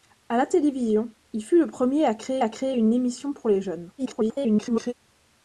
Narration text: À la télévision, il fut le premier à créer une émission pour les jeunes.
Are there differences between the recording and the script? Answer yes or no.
yes